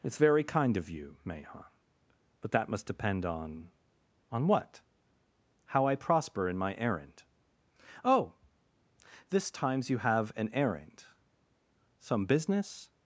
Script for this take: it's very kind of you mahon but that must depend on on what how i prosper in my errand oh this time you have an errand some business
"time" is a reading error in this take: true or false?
true